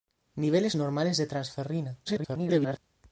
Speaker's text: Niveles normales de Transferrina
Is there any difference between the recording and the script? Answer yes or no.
yes